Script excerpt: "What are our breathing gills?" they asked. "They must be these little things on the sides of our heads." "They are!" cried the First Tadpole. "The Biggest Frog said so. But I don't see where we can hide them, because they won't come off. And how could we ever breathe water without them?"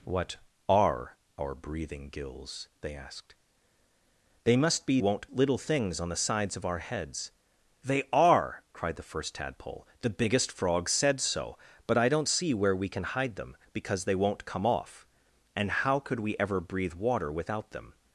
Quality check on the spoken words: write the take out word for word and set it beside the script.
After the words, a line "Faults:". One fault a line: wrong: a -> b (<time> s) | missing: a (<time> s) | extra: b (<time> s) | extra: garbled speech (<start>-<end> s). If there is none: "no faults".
"What are our breathing gills?" they asked. "They must be won't little things on the sides of our heads." "They are!" cried the First Tadpole. "The Biggest Frog said so. But I don't see where we can hide them, because they won't come off. And how could we ever breathe water without them?"
Faults:
wrong: these -> won't (5.0 s)